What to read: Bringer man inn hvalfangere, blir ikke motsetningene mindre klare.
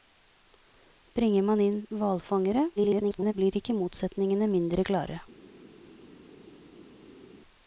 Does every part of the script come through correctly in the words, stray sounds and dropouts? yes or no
no